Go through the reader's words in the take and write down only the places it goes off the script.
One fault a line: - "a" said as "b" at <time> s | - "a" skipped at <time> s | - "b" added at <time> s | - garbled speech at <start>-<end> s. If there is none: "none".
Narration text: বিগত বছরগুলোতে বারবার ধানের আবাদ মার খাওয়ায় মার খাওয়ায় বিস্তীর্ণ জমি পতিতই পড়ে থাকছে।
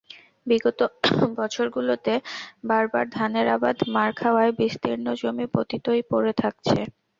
- "মার খাওয়ায়" skipped at 4.5 s